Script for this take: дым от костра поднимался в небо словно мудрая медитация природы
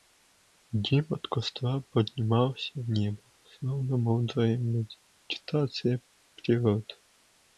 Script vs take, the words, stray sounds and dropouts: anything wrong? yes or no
no